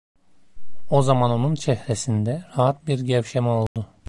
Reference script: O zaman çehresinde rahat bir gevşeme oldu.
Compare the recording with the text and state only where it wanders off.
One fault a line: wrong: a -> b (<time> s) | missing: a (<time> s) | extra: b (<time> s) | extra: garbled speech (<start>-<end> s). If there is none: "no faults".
extra: onun (1.3 s)